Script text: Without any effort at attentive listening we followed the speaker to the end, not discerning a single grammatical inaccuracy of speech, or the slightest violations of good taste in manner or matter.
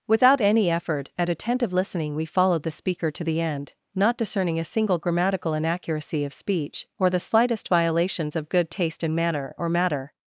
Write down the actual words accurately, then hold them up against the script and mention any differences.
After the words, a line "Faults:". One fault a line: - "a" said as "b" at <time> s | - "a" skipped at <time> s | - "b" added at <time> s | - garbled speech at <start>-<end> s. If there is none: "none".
Without any effort at attentive listening we followed the speaker to the end, not discerning a single grammatical inaccuracy of speech, or the slightest violations of good taste in manner or matter.
Faults:
none